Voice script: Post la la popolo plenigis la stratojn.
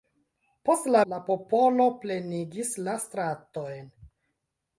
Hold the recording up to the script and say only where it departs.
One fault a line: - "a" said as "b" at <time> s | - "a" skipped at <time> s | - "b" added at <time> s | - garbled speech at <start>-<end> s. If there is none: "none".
none